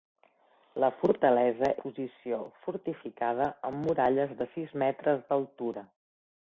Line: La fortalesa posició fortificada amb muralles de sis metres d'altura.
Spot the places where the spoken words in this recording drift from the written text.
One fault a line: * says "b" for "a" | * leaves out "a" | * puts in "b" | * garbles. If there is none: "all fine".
all fine